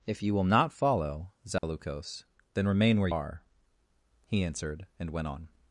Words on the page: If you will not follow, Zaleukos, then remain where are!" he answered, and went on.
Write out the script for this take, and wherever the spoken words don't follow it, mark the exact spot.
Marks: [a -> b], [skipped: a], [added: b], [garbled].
If you will not follow, Zaleukos, then remain where are!" he answered, and went on.